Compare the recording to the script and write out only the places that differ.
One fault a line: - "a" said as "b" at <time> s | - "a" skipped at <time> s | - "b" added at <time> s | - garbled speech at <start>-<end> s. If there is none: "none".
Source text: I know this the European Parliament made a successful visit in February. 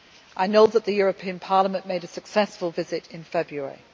- "this" said as "that" at 0.7 s